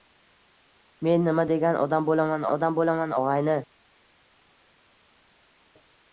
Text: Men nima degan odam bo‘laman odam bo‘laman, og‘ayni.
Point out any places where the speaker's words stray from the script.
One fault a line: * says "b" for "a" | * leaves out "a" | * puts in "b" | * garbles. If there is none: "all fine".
all fine